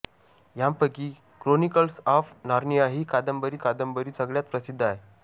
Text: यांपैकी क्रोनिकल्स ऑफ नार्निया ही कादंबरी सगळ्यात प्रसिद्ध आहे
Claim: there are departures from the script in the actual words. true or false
true